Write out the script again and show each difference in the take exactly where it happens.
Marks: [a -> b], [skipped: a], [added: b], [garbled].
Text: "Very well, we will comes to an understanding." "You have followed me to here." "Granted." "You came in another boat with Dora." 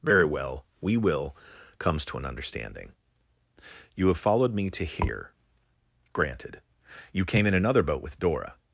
"Very well, we will comes to an understanding." "You have followed me to here." "Granted." "You came in another boat with Dora."